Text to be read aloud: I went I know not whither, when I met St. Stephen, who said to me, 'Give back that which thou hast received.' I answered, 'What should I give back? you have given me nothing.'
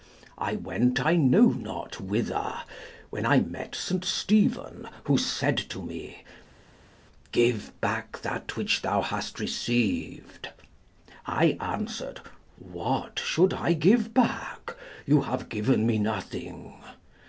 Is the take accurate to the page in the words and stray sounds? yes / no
yes